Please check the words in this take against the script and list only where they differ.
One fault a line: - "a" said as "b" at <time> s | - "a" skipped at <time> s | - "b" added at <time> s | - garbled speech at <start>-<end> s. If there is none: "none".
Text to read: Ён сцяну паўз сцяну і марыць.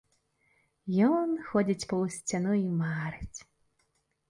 - "сцяну" said as "ходзіць" at 1.5 s